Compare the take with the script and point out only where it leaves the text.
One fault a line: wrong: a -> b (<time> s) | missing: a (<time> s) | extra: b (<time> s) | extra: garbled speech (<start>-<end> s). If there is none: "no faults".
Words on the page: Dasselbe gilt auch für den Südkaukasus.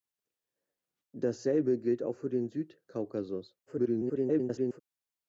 extra: garbled speech (3.7-4.8 s)